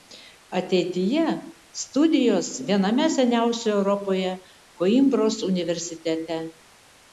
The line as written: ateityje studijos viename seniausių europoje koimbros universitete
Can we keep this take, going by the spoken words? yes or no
yes